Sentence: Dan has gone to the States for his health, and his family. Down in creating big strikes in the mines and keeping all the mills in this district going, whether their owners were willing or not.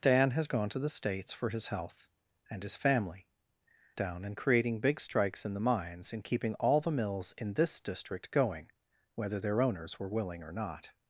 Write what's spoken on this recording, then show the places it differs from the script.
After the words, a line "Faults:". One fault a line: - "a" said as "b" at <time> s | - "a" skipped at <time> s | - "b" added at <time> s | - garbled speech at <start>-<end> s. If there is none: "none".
Dan has gone to the States for his health, and his family. Down in creating big strikes in the mines and keeping all the mills in this district going, whether their owners were willing or not.
Faults:
none